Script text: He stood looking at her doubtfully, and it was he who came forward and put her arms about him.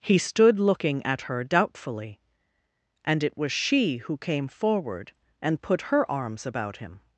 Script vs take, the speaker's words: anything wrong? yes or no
yes